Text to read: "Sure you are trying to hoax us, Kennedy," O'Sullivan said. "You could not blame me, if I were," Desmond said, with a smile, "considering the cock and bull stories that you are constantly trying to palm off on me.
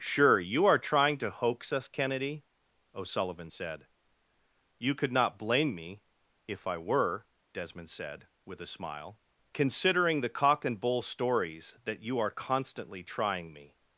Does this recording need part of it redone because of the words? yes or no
yes